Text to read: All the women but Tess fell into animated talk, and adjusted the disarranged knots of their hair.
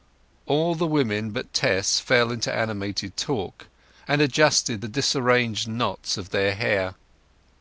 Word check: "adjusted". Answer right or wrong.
right